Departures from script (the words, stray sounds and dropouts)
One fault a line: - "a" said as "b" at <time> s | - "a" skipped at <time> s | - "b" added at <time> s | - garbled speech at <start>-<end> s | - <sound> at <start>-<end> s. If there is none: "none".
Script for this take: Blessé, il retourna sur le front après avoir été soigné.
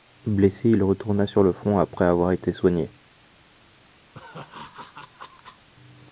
- laugh at 4.1-5.7 s